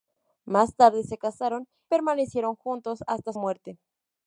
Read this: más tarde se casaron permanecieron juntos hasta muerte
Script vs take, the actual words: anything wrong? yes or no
no